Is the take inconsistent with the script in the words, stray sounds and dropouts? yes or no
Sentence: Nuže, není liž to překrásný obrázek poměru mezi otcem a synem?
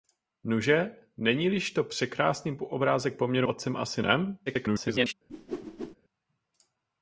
yes